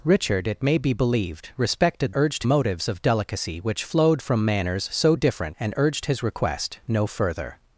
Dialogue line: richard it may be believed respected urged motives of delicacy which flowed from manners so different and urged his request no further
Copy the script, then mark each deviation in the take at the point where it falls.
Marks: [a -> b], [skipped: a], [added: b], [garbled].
richard it may be believed respected urged motives of delicacy which flowed from manners so different and urged his request no further